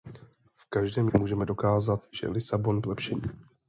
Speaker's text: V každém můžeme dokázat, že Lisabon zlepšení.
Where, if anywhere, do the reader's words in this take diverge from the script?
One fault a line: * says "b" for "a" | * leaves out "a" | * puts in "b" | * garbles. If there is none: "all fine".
all fine